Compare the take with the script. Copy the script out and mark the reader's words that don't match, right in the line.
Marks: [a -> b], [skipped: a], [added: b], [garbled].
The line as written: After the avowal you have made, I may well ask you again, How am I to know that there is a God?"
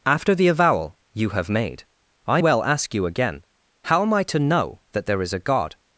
After the avowal you have made, I [skipped: may] well ask you again, How am I to know that there is a God?"